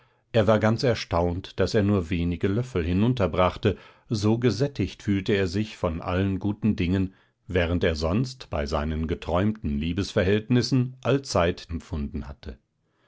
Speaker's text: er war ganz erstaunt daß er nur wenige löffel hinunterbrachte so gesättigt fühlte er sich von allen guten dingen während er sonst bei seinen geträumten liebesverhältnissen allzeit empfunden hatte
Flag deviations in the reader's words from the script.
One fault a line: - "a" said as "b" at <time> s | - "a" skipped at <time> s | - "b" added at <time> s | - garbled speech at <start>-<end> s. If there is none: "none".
none